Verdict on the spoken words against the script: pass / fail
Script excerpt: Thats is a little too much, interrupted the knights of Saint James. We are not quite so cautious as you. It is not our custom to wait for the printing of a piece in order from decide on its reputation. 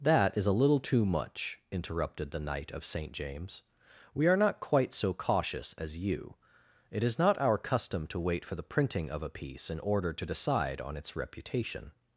fail